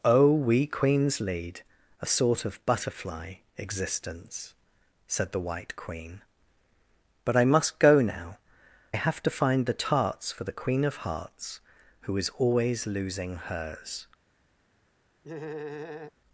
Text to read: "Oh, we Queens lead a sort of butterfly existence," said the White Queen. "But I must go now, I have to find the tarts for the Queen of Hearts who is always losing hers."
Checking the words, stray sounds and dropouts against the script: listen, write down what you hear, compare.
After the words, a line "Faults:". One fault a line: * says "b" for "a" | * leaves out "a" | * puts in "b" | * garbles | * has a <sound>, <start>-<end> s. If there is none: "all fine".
"Oh, we Queens lead a sort of butterfly existence," said the White Queen. "But I must go now, I have to find the tarts for the Queen of Hearts who is always losing hers."
Faults:
* has a laugh, 15.2-16.1 s